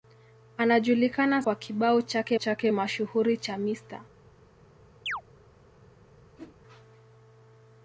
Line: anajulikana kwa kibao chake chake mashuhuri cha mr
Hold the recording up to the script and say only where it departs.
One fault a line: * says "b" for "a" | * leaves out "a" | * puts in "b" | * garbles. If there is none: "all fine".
all fine